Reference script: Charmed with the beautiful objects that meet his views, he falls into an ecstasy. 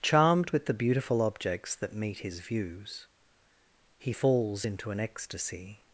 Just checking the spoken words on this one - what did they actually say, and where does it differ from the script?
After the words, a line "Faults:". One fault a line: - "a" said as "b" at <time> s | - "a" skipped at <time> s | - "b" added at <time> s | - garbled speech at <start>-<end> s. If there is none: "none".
Charmed with the beautiful objects that meet his views, he falls into an ecstasy.
Faults:
none